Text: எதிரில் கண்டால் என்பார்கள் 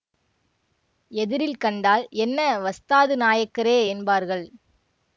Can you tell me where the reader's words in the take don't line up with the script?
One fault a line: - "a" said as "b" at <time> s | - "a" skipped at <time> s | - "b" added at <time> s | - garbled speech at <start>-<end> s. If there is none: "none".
- "என்ன வஸ்தாது நாயக்கரே" added at 2.2 s